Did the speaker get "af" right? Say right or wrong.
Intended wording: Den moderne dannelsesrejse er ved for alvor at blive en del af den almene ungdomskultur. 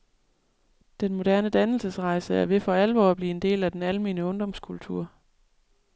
right